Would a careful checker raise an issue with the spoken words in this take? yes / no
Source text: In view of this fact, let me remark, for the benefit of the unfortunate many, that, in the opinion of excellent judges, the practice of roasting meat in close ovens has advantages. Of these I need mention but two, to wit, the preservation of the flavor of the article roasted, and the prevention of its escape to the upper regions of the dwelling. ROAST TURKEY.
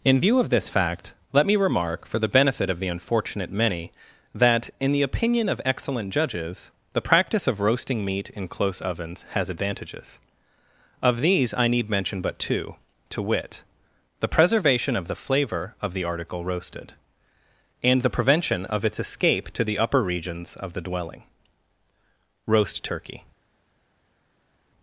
no